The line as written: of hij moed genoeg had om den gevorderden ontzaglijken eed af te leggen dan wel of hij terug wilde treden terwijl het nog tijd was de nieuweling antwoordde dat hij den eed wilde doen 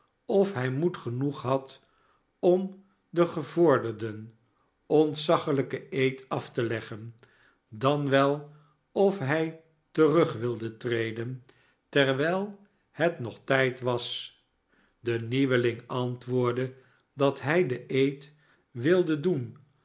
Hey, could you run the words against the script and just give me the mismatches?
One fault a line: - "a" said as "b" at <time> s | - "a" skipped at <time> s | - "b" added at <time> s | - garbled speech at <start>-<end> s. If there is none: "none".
none